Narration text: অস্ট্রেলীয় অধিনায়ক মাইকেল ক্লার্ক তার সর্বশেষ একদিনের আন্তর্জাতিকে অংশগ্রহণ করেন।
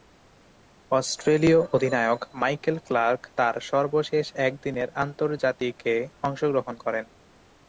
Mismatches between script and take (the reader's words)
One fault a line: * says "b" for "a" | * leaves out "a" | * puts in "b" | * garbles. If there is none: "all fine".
all fine